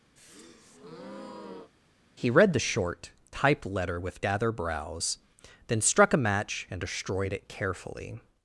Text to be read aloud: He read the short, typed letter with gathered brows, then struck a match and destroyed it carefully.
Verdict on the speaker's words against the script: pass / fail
fail